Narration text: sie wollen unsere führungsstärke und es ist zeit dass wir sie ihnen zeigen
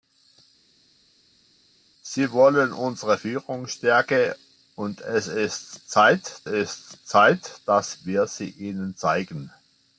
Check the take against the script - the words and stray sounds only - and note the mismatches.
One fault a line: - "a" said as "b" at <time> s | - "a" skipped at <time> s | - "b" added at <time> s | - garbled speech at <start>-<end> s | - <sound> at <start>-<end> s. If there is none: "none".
- "ist zeit" added at 6.4 s